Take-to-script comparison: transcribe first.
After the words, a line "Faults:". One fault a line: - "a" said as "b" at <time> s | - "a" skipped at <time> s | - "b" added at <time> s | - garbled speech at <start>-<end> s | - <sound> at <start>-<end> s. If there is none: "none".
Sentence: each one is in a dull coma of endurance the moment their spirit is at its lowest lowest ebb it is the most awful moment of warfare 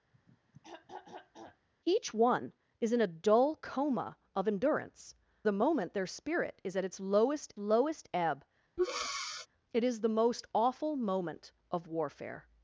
each one is in a dull coma of endurance the moment their spirit is at its lowest lowest ebb it is the most awful moment of warfare
Faults:
- throat clearing at 0.1-1.7 s
- breath at 8.8-9.5 s